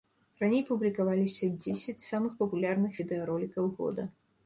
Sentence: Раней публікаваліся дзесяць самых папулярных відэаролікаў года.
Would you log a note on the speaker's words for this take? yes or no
no